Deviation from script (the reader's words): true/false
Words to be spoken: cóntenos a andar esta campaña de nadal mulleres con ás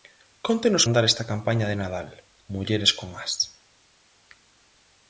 false